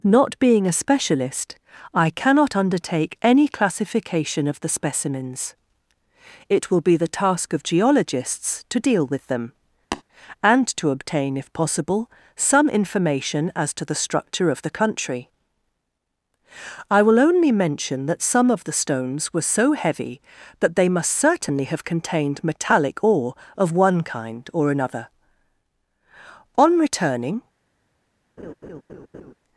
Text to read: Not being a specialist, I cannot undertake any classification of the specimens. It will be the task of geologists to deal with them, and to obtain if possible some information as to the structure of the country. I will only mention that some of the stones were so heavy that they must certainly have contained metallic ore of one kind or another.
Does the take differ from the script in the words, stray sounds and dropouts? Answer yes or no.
yes